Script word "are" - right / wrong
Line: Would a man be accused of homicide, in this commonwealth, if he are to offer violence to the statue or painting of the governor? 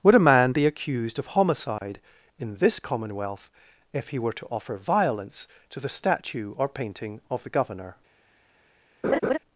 wrong